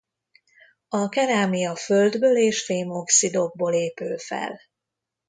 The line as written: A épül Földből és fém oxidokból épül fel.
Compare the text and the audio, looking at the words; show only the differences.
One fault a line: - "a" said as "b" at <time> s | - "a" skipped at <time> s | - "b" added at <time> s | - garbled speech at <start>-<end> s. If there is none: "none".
- "épül" said as "kerámia" at 1.1 s